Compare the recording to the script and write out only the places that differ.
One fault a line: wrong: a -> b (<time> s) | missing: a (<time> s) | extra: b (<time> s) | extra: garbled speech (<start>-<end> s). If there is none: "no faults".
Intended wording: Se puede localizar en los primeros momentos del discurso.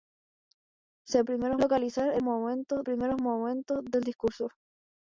wrong: puede -> primeros (1.2 s)
wrong: los -> momentos (2.2 s)